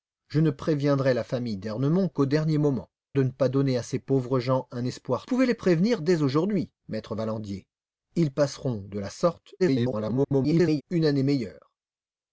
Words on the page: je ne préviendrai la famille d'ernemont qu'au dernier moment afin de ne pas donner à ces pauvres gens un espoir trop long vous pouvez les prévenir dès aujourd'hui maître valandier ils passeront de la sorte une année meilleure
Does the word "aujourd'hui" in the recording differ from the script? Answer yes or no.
no